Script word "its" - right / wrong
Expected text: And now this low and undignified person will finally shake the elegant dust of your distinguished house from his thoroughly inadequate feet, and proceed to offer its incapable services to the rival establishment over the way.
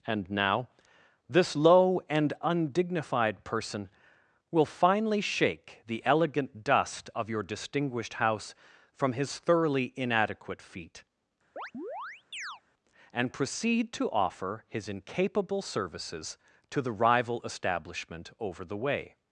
wrong